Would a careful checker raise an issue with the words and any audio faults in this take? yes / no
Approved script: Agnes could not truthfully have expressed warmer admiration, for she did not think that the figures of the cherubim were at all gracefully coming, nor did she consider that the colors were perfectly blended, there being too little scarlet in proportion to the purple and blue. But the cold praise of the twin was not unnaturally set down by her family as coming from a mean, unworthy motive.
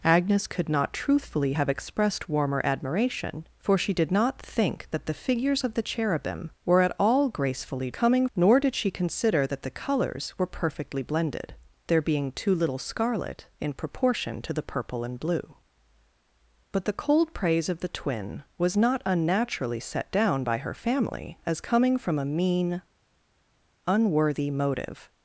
no